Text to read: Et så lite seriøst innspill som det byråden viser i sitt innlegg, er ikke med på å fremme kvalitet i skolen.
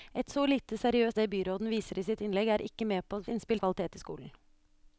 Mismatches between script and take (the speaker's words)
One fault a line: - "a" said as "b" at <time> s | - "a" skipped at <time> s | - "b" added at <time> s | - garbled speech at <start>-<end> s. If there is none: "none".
- "innspill som" skipped at 1.2 s
- "fremme" said as "innspill" at 3.3 s